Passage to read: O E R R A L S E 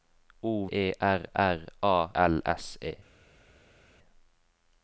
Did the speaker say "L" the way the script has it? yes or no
yes